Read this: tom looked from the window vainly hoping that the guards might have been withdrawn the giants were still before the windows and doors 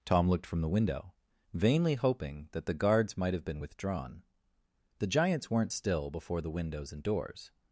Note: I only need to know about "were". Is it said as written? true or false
false